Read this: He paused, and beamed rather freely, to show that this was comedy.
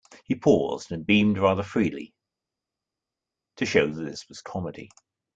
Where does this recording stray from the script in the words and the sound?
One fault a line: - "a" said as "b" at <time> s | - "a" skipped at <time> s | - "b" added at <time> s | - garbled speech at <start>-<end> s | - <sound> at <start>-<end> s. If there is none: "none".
none